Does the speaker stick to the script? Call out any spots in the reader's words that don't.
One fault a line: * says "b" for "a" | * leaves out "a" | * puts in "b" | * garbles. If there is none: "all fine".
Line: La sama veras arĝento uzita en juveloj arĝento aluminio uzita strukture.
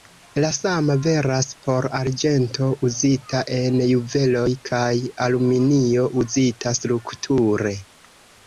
* puts in "por"
* says "kaj" for "arĝento"